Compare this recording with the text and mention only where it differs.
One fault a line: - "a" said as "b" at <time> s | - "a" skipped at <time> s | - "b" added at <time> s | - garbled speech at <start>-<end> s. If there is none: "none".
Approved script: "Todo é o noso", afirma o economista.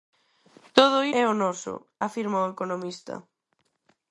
none